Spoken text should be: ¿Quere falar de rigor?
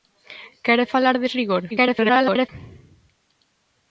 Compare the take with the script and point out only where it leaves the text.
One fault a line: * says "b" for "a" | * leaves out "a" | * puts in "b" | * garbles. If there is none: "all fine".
* garbles